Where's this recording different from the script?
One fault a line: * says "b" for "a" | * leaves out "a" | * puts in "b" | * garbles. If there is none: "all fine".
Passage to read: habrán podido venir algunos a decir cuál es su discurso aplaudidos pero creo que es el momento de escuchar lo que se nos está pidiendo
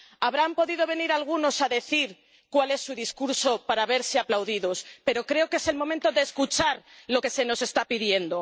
* puts in "para verse"